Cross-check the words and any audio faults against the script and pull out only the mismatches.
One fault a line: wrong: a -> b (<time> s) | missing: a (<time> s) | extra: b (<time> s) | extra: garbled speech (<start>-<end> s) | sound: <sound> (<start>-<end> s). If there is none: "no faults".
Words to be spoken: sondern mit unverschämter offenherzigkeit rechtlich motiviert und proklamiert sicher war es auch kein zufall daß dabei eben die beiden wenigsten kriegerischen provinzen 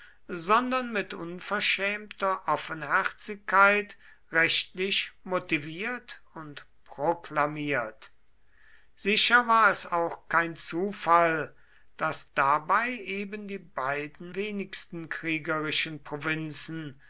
no faults